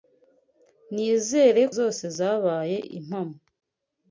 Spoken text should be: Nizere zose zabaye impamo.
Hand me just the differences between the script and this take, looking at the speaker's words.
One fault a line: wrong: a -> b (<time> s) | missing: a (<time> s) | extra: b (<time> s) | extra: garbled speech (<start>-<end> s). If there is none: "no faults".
no faults